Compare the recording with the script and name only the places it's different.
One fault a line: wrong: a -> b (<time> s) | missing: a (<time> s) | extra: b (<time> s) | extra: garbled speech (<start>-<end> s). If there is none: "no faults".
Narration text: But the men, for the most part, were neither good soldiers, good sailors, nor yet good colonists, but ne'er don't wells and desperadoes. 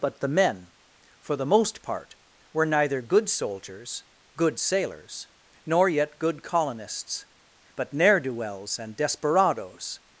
wrong: don't -> do (8.2 s)